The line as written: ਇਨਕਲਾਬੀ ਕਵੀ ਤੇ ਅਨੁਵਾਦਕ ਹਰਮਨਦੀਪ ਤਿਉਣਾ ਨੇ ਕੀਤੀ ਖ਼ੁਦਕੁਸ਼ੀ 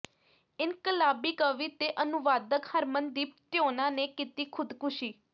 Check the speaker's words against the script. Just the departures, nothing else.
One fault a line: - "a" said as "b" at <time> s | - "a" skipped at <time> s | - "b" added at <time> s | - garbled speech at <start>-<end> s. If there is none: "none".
none